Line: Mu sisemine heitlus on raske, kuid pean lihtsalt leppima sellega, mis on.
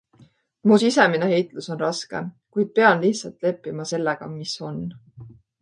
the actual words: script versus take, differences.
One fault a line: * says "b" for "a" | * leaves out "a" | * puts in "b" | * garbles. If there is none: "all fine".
all fine